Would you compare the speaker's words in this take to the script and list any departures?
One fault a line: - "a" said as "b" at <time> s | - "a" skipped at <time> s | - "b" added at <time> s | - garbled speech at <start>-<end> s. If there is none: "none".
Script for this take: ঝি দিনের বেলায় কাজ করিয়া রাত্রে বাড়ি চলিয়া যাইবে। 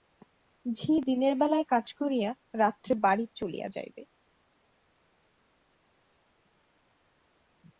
none